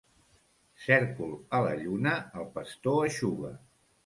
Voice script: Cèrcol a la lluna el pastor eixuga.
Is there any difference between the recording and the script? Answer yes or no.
no